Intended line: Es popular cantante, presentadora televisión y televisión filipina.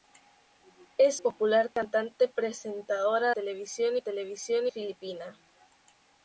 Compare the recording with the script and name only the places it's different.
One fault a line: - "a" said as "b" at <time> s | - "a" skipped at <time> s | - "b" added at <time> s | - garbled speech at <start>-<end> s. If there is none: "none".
none